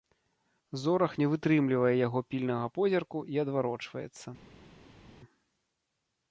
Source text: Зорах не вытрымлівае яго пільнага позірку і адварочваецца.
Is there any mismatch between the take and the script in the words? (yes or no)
no